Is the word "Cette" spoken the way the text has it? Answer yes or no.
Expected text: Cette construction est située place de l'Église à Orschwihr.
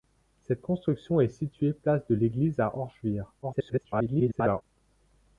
yes